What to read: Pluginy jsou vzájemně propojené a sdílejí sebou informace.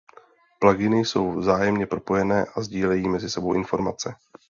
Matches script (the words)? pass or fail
fail